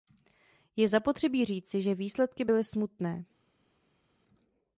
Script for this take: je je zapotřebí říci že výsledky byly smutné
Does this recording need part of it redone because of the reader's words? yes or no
yes